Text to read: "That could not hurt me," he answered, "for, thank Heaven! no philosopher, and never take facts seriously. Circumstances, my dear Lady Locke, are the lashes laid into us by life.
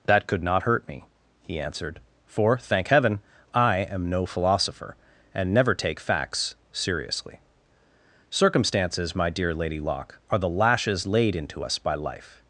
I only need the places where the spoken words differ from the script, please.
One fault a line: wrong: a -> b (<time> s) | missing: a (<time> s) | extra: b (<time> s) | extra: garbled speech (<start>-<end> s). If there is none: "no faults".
extra: I am (3.5 s)